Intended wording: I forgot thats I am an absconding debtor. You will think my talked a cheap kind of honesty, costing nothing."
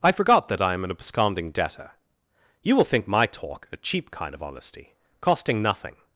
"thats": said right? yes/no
no